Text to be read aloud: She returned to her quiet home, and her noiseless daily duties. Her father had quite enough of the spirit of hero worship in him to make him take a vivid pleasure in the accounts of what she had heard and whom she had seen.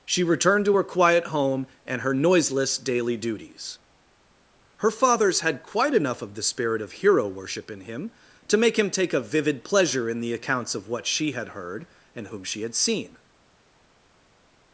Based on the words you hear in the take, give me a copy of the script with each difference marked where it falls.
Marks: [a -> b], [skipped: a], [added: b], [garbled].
She returned to her quiet home, and her noiseless daily duties. Her [father -> fathers] had quite enough of the spirit of hero worship in him to make him take a vivid pleasure in the accounts of what she had heard and whom she had seen.